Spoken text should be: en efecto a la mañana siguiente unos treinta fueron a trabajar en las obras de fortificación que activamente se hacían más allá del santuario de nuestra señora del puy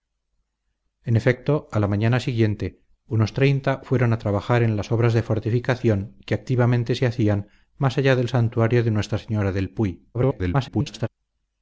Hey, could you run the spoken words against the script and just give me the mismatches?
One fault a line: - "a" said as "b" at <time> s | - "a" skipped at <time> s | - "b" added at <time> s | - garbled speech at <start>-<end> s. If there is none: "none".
- garbled speech at 10.1-11.1 s